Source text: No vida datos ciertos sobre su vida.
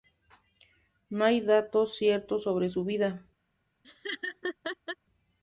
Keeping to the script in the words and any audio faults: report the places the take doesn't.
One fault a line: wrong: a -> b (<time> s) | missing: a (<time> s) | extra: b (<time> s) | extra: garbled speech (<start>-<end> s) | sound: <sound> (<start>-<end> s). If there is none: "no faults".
wrong: vida -> hay (1.2 s)
sound: laugh (3.8-5.0 s)